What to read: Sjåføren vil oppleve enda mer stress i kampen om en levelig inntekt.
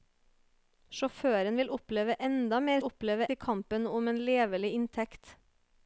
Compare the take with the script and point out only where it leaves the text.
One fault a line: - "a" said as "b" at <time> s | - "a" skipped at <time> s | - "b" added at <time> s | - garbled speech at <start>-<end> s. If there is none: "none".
- "stress" said as "oppleve" at 2.9 s